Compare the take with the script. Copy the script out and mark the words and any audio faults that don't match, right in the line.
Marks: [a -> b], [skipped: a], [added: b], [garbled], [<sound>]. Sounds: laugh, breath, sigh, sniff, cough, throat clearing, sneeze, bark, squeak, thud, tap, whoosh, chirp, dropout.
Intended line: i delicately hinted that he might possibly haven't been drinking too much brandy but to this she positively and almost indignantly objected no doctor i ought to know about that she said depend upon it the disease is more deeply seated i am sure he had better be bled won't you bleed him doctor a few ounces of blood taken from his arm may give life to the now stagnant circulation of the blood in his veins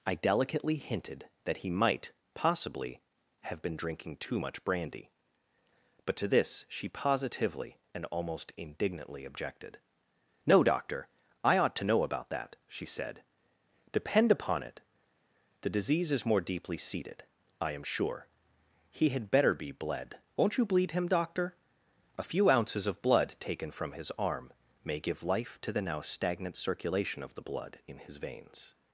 i delicately hinted that he might possibly [haven't -> have] been drinking too much brandy but to this she positively and almost indignantly objected no doctor i ought to know about that she said depend upon it the disease is more deeply seated i am sure he had better be bled won't you bleed him doctor a few ounces of blood taken from his arm may give life to the now stagnant circulation of the blood in his veins